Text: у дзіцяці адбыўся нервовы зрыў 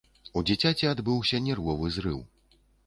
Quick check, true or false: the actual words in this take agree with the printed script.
true